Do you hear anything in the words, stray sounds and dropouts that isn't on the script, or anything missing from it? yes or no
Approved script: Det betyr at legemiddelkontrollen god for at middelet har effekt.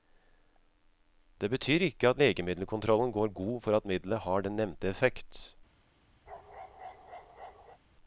yes